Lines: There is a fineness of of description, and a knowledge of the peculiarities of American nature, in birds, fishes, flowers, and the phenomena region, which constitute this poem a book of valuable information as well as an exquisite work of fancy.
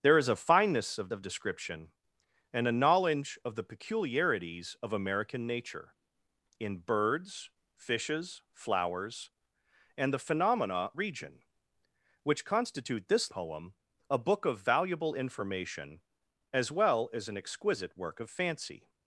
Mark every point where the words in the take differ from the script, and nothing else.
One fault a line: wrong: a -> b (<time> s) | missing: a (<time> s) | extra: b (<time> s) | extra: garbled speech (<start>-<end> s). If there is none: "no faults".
no faults